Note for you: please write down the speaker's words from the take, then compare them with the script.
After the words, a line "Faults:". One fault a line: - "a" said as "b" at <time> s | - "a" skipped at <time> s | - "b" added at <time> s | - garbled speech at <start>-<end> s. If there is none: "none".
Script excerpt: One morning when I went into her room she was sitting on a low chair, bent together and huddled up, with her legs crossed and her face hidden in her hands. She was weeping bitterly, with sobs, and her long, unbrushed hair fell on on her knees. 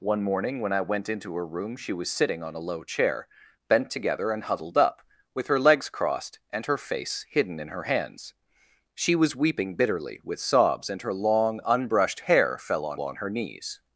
One morning when I went into her room she was sitting on a low chair, bent together and huddled up, with her legs crossed and her face hidden in her hands. She was weeping bitterly, with sobs, and her long, unbrushed hair fell on on her knees.
Faults:
none